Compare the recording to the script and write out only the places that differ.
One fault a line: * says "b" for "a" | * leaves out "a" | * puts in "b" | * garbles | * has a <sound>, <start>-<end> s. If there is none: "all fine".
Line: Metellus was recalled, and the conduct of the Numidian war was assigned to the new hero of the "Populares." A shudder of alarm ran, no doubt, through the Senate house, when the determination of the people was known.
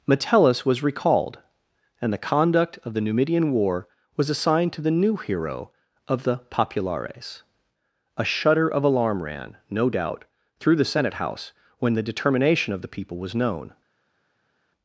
all fine